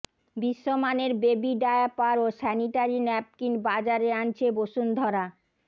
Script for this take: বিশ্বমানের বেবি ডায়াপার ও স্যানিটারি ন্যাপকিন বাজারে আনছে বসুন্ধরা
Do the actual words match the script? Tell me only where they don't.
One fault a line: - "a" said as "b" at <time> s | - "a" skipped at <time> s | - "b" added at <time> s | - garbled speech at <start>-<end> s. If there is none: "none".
none